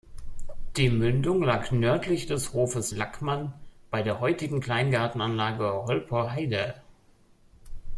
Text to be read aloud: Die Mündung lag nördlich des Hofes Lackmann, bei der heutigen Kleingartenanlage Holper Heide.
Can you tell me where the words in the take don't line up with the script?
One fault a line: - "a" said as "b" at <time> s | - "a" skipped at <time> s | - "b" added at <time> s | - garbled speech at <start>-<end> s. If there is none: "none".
none